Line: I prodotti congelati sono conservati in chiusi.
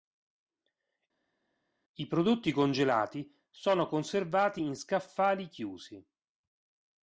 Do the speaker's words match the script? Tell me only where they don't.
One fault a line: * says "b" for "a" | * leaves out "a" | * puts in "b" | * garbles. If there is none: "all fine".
* puts in "scaffali"